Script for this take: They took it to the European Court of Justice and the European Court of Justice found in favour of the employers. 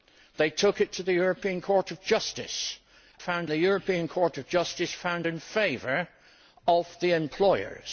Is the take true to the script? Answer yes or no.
no